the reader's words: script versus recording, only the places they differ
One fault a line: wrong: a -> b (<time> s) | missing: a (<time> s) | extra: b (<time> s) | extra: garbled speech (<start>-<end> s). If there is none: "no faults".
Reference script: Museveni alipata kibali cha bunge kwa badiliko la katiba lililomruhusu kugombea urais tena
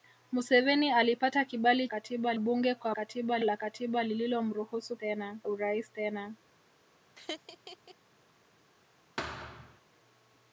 wrong: cha -> katiba (1.9 s)
wrong: badiliko -> katiba (2.9 s)
wrong: kugombea -> tena (5.0 s)